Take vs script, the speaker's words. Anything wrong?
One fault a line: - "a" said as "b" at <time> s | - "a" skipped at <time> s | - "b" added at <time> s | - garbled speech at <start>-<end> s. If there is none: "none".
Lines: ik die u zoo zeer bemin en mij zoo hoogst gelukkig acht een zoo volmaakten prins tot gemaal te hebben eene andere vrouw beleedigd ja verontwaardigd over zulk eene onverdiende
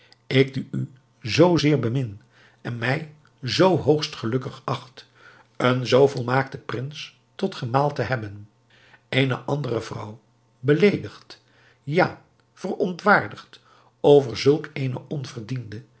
none